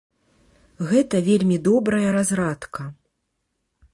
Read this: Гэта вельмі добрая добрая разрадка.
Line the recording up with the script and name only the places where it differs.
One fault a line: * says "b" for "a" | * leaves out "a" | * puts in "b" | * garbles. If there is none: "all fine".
* leaves out "добрая"